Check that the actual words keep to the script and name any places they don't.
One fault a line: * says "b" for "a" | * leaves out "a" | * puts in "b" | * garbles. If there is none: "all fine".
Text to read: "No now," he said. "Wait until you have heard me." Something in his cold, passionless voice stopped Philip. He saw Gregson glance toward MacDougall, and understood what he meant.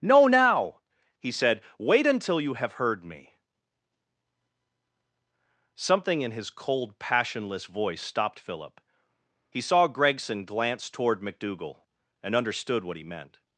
all fine